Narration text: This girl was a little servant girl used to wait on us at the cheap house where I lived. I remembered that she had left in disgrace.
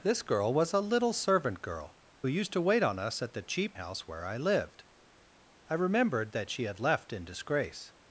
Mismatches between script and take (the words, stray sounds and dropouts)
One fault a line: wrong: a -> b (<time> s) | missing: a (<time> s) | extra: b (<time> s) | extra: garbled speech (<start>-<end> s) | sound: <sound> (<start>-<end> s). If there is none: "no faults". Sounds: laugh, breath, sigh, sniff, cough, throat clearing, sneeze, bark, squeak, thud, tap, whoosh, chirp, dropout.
no faults